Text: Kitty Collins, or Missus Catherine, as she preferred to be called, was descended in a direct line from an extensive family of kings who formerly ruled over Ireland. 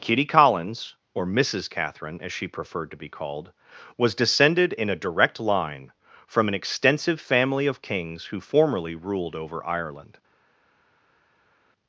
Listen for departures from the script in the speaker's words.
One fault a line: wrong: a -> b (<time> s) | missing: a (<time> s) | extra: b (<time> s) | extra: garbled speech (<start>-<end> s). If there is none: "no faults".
no faults